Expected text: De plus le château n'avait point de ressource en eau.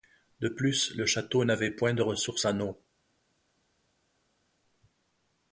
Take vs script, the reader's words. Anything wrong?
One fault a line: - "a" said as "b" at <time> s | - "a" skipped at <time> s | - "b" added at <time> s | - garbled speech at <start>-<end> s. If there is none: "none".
none